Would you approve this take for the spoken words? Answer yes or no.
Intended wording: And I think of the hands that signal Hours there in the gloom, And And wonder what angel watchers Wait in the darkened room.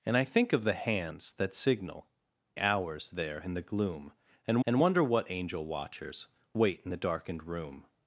yes